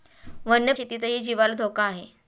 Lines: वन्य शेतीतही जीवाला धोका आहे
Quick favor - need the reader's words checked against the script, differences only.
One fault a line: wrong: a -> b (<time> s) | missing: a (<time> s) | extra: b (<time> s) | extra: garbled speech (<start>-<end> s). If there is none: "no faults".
no faults